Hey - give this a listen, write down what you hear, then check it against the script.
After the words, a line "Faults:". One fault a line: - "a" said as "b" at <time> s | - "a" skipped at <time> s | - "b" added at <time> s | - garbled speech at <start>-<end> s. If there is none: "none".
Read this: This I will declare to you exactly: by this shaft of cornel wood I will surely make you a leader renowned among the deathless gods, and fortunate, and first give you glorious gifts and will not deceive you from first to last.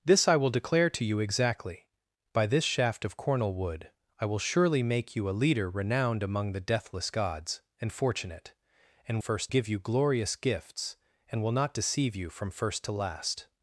This I will declare to you exactly: by this shaft of cornel wood I will surely make you a leader renowned among the deathless gods, and fortunate, and first give you glorious gifts and will not deceive you from first to last.
Faults:
none